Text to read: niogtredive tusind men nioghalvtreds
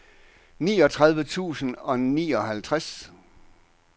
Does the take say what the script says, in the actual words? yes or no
no